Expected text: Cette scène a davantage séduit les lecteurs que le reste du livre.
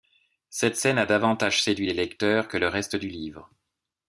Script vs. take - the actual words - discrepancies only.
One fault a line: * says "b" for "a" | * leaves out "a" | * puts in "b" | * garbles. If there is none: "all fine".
all fine